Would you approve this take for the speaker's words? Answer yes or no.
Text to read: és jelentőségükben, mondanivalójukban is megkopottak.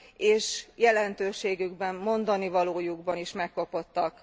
yes